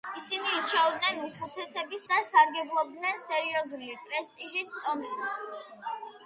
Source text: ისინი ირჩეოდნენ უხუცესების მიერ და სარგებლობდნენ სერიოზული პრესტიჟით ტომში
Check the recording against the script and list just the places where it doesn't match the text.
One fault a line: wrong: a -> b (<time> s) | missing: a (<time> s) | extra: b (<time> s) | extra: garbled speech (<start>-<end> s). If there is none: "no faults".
missing: მიერ (2.0 s)